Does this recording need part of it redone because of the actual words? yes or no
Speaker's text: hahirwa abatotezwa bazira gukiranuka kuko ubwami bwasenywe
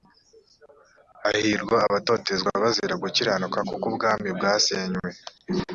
no